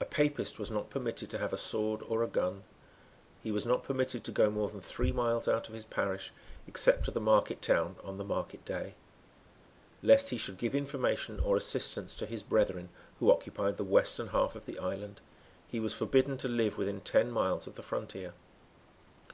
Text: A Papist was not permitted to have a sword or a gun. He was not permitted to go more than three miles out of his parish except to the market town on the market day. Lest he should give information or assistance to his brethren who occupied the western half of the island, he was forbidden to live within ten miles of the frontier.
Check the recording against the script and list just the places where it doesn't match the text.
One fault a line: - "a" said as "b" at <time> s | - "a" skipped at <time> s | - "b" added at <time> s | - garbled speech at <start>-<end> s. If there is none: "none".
none